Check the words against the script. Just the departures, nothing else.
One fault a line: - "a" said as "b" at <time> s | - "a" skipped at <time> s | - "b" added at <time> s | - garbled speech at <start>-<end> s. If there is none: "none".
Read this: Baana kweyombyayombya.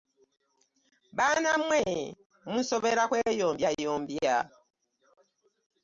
- "mmwe munsobera" added at 1.6 s